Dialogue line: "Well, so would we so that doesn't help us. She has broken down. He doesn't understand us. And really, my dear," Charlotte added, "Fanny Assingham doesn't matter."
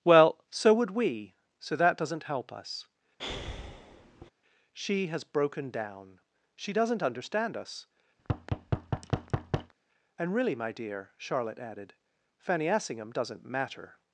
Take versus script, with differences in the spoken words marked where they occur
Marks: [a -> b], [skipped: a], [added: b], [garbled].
"Well, so would we so that doesn't help us. She has broken down. [He -> She] doesn't understand us. And really, my dear," Charlotte added, "Fanny Assingham doesn't matter."